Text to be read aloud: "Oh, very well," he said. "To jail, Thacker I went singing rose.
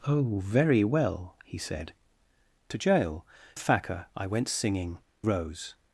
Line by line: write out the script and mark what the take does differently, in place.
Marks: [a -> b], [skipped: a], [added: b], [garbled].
"Oh, very well," he said. "To jail, Thacker I went singing rose.